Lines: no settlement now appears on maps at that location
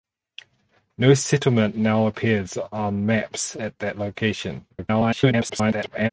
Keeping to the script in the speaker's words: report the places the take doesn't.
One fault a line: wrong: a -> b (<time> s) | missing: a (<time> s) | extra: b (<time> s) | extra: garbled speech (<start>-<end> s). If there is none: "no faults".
extra: garbled speech (4.7-6.1 s)